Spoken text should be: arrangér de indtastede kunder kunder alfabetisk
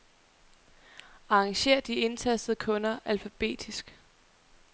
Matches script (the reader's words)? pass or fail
fail